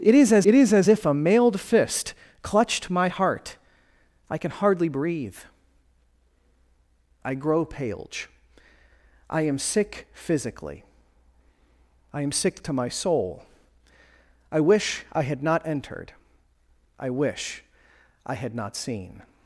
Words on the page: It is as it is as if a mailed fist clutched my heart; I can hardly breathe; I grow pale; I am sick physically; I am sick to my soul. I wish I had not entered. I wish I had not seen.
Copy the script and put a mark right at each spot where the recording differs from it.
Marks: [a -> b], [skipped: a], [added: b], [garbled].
It is as it is as if a mailed fist clutched my heart; I can hardly breathe; I grow pale; I am sick physically; I am sick to my soul. I wish I had not entered. I wish I had not seen.